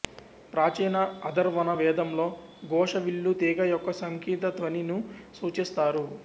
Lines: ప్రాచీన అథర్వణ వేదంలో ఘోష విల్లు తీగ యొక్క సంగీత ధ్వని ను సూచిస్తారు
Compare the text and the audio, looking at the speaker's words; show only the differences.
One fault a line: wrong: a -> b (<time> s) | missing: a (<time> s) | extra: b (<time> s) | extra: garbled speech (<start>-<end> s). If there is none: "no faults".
no faults